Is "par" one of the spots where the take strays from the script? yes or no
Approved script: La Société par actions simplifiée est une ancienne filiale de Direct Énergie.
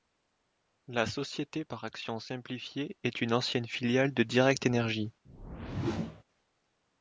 no